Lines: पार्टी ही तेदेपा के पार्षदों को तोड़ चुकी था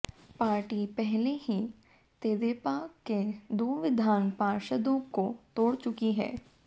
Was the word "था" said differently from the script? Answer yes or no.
yes